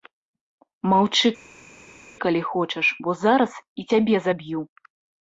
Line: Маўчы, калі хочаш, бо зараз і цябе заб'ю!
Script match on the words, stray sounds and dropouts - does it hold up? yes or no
yes